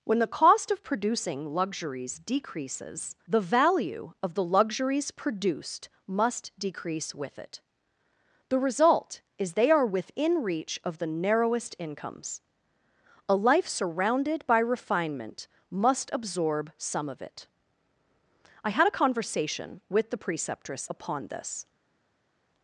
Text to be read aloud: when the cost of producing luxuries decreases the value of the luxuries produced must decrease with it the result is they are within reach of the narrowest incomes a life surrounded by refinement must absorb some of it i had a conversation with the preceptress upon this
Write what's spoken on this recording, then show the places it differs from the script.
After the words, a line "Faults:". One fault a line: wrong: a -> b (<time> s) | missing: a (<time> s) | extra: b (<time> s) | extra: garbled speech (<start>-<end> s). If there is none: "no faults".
when the cost of producing luxuries decreases the value of the luxuries produced must decrease with it the result is they are within reach of the narrowest incomes a life surrounded by refinement must absorb some of it i had a conversation with the preceptress upon this
Faults:
no faults